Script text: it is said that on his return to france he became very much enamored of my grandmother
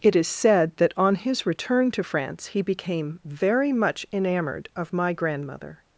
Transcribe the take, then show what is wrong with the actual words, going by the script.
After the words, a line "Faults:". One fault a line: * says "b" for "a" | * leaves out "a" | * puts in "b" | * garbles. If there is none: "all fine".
it is said that on his return to france he became very much enamored of my grandmother
Faults:
all fine